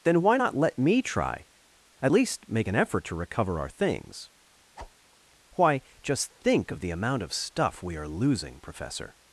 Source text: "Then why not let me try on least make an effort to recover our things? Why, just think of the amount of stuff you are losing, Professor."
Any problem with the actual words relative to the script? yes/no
yes